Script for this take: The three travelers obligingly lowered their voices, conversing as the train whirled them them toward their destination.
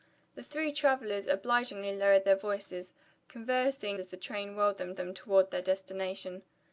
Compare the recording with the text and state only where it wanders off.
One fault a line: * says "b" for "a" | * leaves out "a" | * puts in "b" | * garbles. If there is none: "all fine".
all fine